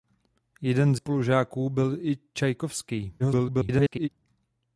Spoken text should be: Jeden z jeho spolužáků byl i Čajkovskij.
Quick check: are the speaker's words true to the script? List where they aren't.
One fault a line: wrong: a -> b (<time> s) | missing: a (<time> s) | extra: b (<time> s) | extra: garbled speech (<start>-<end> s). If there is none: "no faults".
missing: jeho (1.0 s)
extra: garbled speech (3.2-4.1 s)